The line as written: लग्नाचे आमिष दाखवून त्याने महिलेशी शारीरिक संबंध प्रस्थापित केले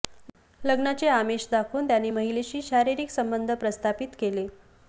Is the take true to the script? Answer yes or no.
yes